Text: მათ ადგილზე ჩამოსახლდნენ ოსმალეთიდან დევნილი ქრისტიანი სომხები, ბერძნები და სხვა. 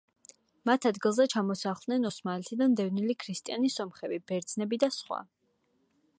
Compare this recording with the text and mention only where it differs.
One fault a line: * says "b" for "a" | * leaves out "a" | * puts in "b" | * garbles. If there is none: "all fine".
all fine